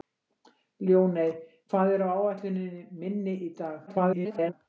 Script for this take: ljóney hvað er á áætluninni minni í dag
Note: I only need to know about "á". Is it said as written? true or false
true